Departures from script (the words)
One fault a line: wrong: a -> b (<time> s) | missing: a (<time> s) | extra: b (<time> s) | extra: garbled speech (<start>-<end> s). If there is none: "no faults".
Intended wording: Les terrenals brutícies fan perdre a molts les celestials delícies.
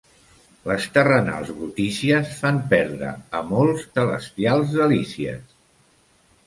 missing: les (3.8 s)